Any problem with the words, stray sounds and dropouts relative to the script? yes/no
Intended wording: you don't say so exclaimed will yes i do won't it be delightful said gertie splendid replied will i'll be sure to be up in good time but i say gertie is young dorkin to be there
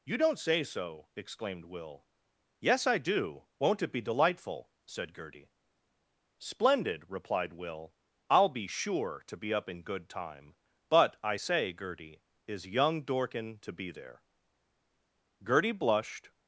yes